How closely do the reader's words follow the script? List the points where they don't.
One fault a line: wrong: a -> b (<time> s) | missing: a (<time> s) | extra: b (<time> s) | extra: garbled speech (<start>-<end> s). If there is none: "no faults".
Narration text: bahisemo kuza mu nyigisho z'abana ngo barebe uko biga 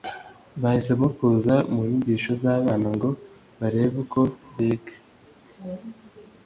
no faults